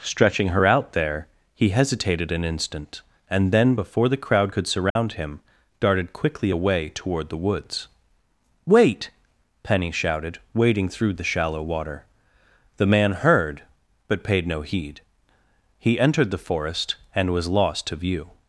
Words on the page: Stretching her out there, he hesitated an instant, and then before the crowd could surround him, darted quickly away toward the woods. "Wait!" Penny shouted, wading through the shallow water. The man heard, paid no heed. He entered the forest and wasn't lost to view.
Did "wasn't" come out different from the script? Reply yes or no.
yes